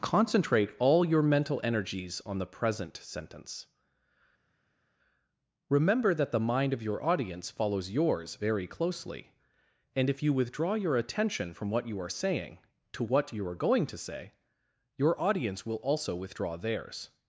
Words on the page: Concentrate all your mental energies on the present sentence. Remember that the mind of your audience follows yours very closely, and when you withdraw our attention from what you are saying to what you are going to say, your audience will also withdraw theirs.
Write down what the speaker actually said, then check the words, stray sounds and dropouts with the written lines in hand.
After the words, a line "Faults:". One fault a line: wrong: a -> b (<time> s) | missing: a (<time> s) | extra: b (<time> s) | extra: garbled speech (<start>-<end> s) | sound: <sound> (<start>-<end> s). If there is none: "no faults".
Concentrate all your mental energies on the present sentence. Remember that the mind of your audience follows yours very closely, and if you withdraw your attention from what you are saying to what you are going to say, your audience will also withdraw theirs.
Faults:
wrong: when -> if (10.1 s)
wrong: our -> your (10.7 s)